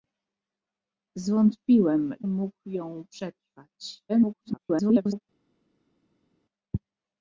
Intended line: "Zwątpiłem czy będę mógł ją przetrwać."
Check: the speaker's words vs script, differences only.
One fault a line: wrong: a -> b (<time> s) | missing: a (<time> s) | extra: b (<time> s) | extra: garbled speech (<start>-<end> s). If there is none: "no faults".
missing: czy będę (2.1 s)
extra: garbled speech (4.1-5.2 s)